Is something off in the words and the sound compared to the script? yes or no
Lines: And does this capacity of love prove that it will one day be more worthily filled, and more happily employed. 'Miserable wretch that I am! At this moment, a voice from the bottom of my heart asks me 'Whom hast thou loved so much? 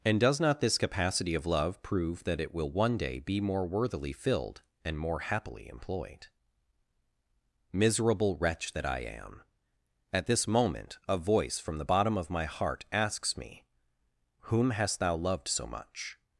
yes